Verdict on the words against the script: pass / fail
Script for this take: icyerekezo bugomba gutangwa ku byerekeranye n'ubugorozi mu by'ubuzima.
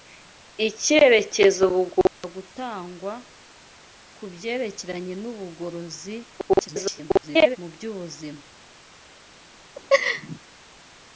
fail